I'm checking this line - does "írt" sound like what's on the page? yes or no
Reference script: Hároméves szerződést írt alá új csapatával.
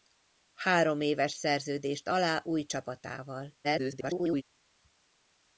no